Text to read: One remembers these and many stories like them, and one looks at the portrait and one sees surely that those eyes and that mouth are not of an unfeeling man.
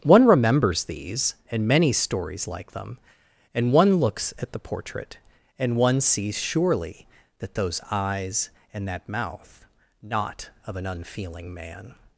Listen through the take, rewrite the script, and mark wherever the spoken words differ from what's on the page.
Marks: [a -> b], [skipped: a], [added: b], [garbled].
One remembers these and many stories like them, and one looks at the portrait and one sees surely that those eyes and that mouth [skipped: are] not of an unfeeling man.